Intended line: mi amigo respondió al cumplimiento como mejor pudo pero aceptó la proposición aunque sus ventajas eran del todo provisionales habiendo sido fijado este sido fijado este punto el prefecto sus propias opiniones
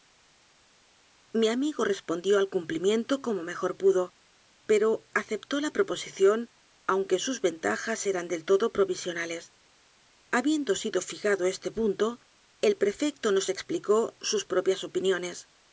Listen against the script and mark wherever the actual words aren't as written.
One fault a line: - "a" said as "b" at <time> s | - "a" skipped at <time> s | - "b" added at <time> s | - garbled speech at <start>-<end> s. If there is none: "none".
- "sido fijado este" skipped at 11.7 s
- "nos explicó" added at 13.3 s